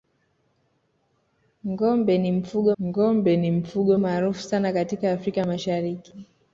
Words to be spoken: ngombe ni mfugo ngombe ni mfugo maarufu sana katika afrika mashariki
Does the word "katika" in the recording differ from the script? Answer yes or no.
no